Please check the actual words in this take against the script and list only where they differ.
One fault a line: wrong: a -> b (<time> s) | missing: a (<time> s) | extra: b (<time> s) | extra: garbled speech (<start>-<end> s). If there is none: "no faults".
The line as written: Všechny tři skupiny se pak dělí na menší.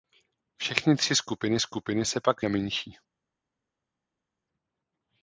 extra: skupiny (1.6 s)
missing: dělí (2.4 s)